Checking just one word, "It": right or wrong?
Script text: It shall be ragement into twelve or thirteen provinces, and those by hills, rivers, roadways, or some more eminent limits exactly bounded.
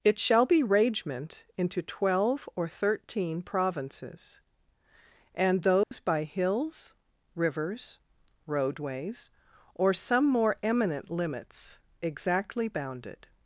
right